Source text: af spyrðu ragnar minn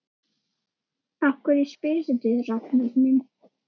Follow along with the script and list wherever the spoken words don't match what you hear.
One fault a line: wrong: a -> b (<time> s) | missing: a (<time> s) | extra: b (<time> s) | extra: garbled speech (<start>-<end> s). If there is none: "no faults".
extra: hverju (1.4 s)